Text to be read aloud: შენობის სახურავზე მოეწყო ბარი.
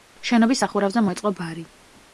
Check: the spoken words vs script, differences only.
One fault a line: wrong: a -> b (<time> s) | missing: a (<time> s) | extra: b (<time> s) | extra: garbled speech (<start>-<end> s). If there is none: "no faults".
no faults